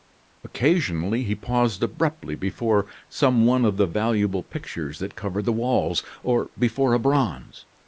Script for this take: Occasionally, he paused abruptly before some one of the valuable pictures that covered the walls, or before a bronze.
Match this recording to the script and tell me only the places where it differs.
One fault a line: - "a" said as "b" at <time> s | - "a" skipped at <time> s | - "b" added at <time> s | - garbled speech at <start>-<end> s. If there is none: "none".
none